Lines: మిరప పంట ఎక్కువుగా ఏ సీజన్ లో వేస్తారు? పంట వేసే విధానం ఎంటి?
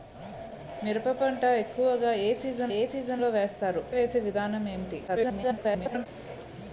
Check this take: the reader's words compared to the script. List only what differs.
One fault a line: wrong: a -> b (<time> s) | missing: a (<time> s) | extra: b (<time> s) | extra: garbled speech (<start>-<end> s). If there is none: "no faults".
extra: ఏ సీజన్ (2.7 s)
missing: పంట (3.8 s)
extra: garbled speech (5.1-6.1 s)